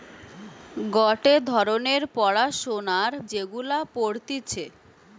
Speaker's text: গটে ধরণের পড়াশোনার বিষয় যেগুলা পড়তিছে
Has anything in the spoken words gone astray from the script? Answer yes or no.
yes